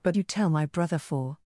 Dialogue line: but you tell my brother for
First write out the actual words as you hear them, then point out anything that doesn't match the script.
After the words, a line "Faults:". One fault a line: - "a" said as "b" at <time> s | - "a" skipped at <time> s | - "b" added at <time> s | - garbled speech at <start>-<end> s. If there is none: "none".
but you tell my brother for
Faults:
none